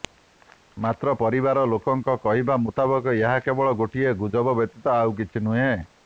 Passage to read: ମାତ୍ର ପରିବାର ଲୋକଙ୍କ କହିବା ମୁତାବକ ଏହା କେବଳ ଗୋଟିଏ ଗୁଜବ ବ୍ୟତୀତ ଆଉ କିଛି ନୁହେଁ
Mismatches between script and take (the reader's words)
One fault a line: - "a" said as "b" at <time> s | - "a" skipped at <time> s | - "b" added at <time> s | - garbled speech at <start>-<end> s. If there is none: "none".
none